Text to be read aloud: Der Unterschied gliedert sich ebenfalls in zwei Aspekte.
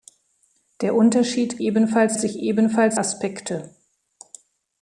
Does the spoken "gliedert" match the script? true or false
false